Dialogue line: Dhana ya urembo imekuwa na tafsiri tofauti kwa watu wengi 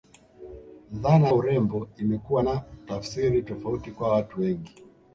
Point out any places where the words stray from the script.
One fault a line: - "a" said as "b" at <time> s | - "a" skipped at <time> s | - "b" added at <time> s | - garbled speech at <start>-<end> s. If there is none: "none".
- "ya" skipped at 1.3 s